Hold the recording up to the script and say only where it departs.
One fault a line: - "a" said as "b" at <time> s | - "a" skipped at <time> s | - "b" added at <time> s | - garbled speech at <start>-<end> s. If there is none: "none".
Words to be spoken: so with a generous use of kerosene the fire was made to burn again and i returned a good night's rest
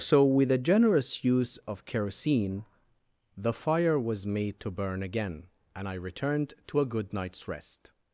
- "to" added at 6.7 s